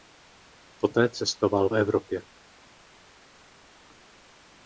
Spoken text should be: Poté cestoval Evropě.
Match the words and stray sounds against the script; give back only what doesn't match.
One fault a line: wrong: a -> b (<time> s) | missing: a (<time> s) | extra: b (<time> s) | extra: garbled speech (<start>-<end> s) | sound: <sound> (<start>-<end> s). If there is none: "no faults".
no faults